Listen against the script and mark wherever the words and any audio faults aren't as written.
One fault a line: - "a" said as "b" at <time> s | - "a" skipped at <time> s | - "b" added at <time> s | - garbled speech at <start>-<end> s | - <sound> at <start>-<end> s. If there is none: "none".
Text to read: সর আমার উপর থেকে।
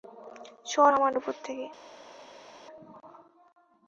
none